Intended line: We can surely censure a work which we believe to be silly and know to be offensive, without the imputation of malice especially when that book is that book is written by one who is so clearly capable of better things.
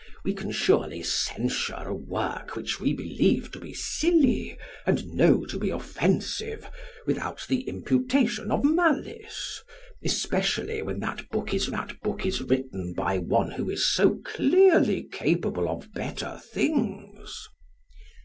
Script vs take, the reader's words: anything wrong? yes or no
no